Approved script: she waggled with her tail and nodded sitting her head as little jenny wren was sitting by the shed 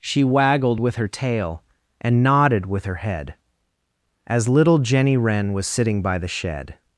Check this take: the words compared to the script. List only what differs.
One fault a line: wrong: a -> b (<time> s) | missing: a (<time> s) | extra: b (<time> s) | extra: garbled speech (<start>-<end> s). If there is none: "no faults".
wrong: sitting -> with (2.6 s)